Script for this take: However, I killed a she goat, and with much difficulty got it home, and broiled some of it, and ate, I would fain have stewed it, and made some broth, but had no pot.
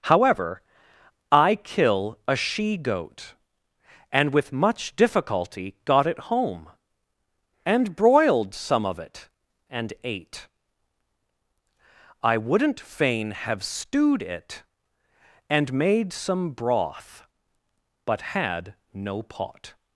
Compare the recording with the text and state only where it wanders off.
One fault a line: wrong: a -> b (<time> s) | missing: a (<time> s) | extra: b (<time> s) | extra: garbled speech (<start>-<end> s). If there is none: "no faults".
wrong: killed -> kill (1.6 s)
wrong: would -> wouldn't (12.4 s)